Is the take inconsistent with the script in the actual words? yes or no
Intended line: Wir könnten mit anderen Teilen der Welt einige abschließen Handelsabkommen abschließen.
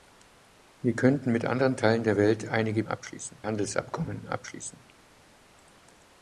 no